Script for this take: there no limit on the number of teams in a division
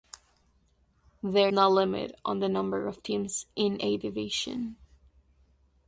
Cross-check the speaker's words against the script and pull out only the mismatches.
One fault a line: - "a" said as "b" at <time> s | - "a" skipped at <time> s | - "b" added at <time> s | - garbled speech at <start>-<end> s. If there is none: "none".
none